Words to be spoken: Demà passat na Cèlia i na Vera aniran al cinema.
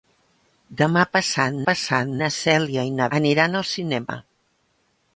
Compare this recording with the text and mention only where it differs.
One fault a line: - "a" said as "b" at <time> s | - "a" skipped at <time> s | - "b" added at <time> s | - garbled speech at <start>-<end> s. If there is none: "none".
- "passat" added at 1.7 s
- "Vera" skipped at 3.1 s